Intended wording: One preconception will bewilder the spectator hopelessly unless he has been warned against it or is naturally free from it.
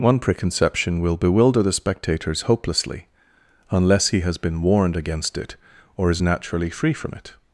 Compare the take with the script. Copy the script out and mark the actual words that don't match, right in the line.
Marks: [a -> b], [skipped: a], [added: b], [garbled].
One preconception will bewilder the [spectator -> spectators] hopelessly unless he has been warned against it or is naturally free from it.